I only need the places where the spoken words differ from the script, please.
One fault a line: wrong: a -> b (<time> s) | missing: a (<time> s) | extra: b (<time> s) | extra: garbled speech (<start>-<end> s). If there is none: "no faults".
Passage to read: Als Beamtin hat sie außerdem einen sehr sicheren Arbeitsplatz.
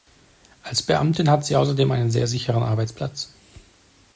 no faults